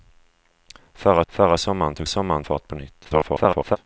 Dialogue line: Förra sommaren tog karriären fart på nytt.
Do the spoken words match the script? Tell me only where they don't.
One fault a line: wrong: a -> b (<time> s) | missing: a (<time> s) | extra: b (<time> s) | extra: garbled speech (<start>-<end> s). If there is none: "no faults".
extra: förra (1.3 s)
wrong: karriären -> sommaren (2.1 s)
extra: garbled speech (3.0-3.8 s)